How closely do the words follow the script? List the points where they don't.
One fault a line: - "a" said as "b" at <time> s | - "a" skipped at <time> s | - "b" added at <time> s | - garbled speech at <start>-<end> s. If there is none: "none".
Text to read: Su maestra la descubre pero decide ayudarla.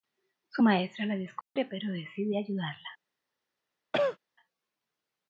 none